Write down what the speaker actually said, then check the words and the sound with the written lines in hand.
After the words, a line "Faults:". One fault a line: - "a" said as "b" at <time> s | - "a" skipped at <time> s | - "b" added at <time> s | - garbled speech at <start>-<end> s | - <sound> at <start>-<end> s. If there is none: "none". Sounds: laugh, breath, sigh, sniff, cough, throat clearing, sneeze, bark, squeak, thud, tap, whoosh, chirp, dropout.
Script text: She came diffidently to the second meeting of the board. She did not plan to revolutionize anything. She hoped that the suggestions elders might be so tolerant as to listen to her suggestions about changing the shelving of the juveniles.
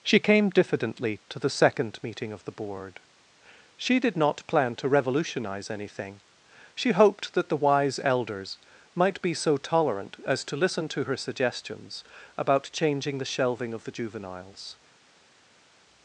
She came diffidently to the second meeting of the board. She did not plan to revolutionize anything. She hoped that the wise elders might be so tolerant as to listen to her suggestions about changing the shelving of the juveniles.
Faults:
- "suggestions" said as "wise" at 7.6 s